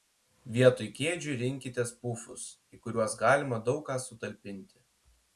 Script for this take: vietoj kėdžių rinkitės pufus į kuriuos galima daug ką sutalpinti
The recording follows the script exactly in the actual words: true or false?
true